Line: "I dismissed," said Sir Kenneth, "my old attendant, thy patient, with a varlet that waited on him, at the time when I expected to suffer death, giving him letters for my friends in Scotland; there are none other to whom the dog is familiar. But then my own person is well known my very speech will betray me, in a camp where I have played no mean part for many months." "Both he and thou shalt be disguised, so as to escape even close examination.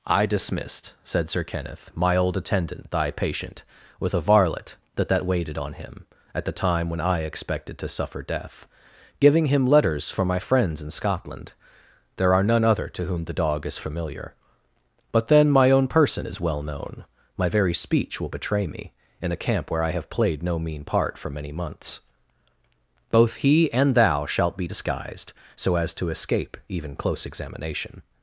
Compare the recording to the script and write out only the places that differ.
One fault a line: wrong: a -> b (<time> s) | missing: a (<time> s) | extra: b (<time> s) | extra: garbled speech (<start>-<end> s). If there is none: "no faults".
extra: that (5.1 s)